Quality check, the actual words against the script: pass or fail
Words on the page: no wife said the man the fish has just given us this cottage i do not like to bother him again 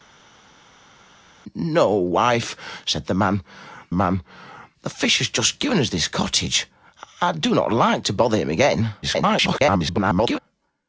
fail